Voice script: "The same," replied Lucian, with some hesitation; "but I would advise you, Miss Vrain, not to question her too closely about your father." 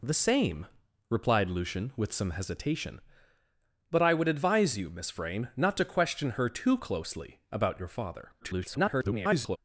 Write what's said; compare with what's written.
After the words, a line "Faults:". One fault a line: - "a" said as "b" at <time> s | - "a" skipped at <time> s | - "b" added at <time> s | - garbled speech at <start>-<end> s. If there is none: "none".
"The same," replied Lucian, with some hesitation; "but I would advise you, Miss Vrain, not to question her too closely about your father." [garbled]
Faults:
- garbled speech at 8.4-9.6 s